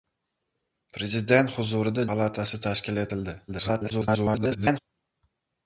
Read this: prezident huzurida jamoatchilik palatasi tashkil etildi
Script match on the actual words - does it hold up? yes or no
no